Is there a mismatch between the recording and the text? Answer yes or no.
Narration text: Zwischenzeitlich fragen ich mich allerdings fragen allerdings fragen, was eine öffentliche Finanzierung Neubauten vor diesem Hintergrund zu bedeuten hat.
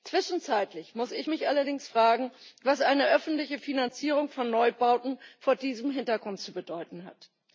yes